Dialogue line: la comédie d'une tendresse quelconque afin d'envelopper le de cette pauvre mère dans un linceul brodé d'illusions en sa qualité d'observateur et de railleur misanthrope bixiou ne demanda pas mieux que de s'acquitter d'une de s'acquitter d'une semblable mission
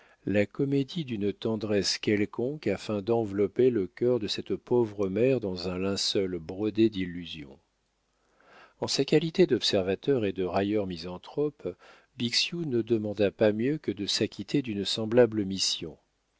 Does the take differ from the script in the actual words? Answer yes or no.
yes